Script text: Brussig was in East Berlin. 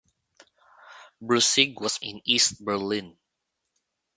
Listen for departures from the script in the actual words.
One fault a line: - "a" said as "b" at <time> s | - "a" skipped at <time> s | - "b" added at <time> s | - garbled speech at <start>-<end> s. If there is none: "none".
none